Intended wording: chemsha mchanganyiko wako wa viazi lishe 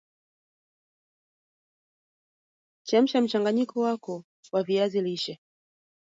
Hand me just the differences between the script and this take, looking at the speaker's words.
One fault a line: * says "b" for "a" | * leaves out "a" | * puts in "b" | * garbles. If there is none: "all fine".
all fine